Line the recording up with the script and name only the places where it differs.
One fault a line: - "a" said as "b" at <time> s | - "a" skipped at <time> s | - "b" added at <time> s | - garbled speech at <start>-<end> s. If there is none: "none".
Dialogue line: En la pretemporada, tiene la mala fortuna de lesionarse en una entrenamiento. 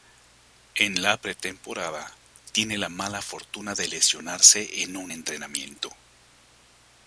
- "una" said as "un" at 5.0 s